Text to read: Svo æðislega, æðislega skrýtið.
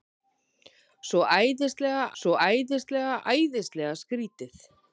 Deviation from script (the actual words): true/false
true